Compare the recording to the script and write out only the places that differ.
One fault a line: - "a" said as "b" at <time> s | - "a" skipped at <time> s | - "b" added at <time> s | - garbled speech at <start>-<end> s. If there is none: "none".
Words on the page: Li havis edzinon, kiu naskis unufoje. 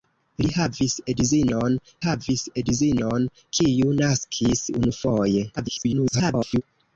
- "havis edzinon" added at 2.0 s
- garbled speech at 5.6-6.6 s